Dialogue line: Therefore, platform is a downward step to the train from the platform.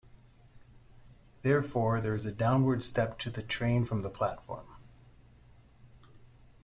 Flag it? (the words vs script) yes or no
yes